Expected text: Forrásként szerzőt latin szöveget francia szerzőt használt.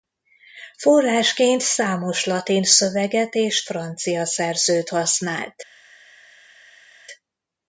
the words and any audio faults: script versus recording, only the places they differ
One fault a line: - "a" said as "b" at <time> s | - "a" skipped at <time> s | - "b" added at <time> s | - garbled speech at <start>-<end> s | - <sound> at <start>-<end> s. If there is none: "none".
- "szerzőt" said as "számos" at 1.6 s
- "és" added at 3.4 s